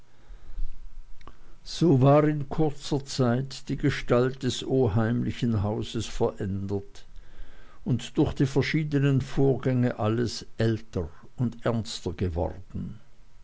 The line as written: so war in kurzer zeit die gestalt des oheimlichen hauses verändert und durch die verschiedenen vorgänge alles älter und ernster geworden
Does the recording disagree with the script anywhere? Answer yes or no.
no